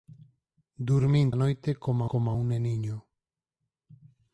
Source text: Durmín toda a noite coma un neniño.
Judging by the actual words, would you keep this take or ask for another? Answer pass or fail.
fail